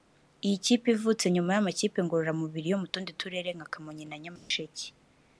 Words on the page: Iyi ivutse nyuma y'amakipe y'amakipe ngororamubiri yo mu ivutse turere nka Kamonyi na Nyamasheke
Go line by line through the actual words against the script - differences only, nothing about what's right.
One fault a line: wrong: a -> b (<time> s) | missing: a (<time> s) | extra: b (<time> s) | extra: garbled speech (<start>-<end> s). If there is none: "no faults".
extra: kipe (0.7 s)
missing: y'amakipe (2.0 s)
wrong: ivutse -> tundi (2.9 s)